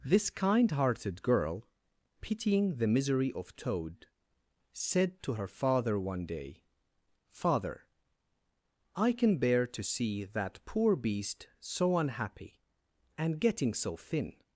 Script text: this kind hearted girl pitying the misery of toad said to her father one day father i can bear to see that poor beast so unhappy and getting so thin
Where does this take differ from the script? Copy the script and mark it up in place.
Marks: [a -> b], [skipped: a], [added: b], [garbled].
this kind hearted girl pitying the misery of toad said to her father one day father i can bear to see that poor beast so unhappy and getting so thin